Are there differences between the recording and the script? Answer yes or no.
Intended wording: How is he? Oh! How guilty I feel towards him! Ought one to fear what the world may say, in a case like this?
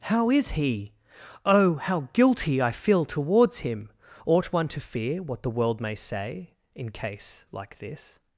yes